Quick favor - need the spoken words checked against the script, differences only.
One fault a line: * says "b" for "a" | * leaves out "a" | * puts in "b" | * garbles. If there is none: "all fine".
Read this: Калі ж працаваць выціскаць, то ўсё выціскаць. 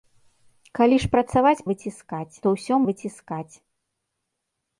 all fine